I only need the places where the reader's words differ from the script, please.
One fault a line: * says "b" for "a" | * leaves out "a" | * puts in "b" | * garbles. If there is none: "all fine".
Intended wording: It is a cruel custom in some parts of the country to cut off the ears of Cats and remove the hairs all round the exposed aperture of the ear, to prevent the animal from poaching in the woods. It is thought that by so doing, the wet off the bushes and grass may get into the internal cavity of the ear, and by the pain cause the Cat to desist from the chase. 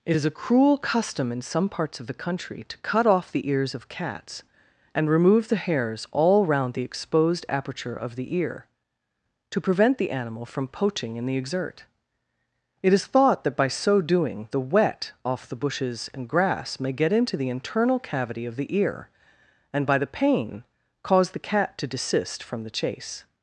* says "exert" for "woods"